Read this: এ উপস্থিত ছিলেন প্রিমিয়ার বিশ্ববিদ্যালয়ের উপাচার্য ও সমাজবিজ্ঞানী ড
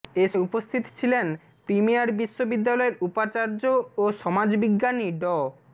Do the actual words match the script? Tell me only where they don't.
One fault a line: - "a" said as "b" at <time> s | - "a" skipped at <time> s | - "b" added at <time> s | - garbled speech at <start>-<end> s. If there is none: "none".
none